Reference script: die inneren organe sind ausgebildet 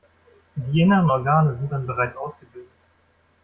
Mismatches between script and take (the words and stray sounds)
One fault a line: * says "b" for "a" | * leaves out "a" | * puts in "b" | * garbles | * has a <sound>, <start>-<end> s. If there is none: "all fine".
* puts in "dann bereits"